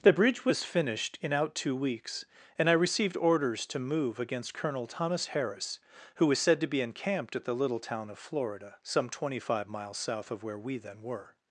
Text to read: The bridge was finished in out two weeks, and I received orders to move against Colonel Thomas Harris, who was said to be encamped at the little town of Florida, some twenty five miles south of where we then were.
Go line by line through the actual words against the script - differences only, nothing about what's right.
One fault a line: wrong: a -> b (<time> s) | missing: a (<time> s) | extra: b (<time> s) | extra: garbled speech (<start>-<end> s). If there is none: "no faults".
no faults